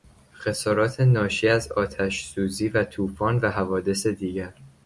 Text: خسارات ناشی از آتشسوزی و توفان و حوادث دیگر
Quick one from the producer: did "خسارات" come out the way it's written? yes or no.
yes